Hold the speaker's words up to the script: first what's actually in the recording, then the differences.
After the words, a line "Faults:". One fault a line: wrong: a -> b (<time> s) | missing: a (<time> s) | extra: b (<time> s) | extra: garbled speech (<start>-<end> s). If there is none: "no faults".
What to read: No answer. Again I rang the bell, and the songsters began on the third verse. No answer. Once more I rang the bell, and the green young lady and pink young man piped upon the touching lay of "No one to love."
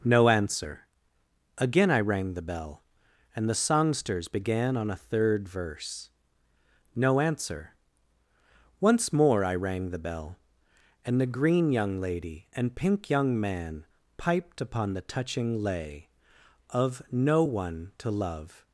No answer. Again I rang the bell, and the songsters began on a third verse. No answer. Once more I rang the bell, and the green young lady and pink young man piped upon the touching lay of "No one to love."
Faults:
wrong: the -> a (4.9 s)